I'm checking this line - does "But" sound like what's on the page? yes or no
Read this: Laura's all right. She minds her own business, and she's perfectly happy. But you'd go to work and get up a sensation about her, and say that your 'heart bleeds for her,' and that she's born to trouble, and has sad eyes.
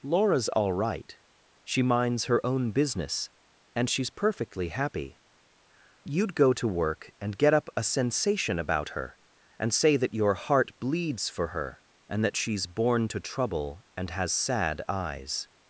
no